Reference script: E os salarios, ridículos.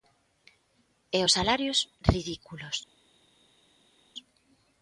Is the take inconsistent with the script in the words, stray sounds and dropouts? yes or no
no